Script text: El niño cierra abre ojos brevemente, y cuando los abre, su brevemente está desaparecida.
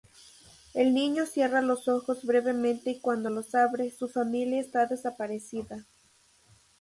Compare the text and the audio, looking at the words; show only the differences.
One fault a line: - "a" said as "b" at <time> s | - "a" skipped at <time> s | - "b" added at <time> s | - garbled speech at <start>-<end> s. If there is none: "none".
- "abre" said as "los" at 1.6 s
- "brevemente" said as "familia" at 4.1 s